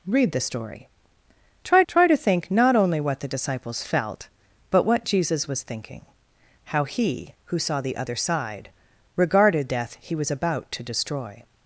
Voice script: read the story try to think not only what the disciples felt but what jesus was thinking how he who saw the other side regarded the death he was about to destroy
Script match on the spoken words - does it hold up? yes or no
no